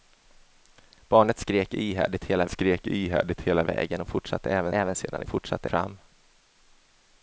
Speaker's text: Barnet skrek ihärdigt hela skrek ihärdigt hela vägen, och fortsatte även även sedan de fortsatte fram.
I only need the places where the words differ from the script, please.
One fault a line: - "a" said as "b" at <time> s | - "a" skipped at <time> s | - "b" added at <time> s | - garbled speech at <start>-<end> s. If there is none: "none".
none